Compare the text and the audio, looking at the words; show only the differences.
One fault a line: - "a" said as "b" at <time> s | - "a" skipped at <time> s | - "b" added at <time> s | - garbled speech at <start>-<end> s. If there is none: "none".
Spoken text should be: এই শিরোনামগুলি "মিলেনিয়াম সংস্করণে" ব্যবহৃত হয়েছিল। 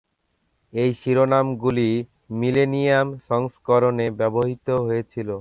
none